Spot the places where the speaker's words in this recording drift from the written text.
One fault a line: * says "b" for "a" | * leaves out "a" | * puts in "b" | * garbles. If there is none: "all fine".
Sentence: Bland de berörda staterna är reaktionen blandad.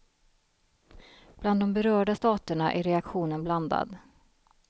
all fine